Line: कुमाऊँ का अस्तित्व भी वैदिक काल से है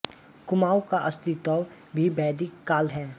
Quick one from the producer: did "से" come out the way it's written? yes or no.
no